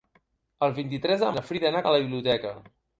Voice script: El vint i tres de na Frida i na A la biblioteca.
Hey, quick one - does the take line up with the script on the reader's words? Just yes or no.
yes